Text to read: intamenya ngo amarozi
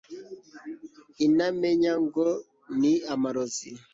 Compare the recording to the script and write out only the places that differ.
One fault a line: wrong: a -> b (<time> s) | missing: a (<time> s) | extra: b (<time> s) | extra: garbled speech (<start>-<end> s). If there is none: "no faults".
extra: ni (2.8 s)